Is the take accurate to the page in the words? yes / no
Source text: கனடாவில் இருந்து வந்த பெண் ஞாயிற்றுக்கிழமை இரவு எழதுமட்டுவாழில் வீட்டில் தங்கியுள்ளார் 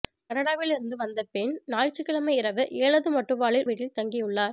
yes